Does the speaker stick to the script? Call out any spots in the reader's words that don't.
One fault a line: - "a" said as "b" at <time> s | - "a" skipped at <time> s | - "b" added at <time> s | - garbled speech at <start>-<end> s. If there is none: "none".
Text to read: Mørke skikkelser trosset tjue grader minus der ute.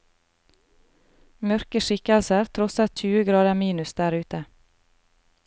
none